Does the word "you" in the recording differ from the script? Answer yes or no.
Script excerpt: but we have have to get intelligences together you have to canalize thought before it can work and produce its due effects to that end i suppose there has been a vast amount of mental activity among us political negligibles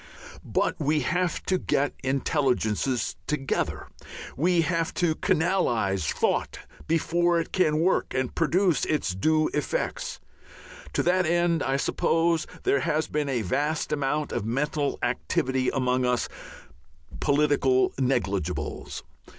yes